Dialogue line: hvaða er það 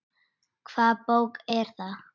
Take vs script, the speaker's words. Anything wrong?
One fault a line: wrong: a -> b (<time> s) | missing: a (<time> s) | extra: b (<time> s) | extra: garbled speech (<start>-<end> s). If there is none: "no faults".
extra: bók (1.1 s)